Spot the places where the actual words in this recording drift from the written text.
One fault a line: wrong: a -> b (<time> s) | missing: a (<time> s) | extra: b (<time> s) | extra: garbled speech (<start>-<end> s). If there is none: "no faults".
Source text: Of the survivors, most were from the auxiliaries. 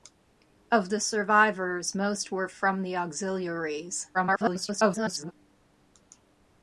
extra: garbled speech (4.1-5.3 s)